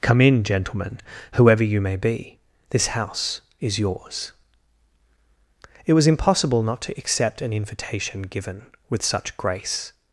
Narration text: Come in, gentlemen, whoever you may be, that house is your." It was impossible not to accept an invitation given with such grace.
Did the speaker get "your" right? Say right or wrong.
wrong